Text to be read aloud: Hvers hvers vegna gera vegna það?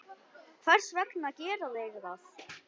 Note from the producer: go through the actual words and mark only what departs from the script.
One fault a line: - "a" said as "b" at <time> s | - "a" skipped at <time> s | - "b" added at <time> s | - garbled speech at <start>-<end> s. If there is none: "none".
- "hvers" skipped at 0.9 s
- "vegna" said as "þeir" at 1.8 s